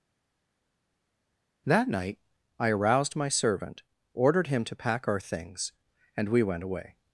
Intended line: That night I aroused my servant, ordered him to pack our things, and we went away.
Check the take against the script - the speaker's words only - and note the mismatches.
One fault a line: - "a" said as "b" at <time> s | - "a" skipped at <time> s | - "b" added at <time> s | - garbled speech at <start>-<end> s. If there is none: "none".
none